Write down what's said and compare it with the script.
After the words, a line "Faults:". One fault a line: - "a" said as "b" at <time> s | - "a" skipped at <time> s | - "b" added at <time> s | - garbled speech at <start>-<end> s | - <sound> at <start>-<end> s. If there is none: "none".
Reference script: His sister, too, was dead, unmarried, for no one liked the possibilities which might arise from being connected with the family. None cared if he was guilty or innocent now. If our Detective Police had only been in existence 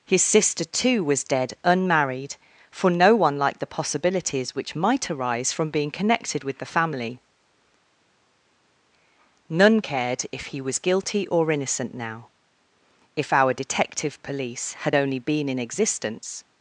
His sister, too, was dead, unmarried, for no one liked the possibilities which might arise from being connected with the family. None cared if he was guilty or innocent now. If our Detective Police had only been in existence
Faults:
none